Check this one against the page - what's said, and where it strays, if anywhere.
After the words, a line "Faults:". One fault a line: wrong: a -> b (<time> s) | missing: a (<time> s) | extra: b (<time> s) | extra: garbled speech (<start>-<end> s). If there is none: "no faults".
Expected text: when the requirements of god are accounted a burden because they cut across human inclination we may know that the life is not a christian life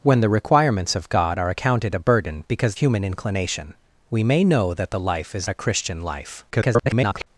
when the requirements of god are accounted a burden because human inclination we may know that the life is a christian life [garbled]
Faults:
missing: they cut across (2.8 s)
missing: not (5.5 s)
extra: garbled speech (6.5-7.3 s)